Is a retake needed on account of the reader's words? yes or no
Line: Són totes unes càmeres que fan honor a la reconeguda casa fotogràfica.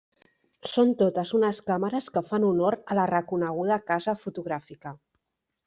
no